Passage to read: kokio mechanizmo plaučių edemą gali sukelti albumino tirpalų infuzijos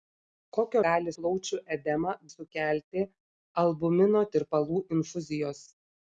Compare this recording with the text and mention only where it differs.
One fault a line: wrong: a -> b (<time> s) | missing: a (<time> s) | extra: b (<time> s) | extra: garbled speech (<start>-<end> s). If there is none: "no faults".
wrong: mechanizmo -> gali (0.8 s)
missing: gali (2.1 s)